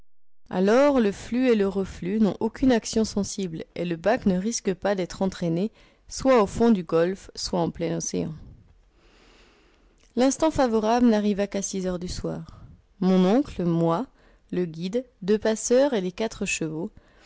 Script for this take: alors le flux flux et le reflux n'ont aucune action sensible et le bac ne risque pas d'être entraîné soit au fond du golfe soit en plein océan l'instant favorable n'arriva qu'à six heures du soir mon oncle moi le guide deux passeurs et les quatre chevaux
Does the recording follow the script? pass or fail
fail